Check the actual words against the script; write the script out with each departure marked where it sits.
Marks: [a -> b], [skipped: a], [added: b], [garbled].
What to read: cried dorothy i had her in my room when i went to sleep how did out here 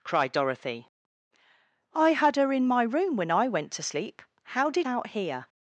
cried dorothy i had her in my room when i went to sleep how did out here